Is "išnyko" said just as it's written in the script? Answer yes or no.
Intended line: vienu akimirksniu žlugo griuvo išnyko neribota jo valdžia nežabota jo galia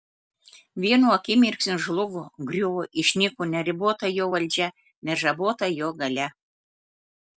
yes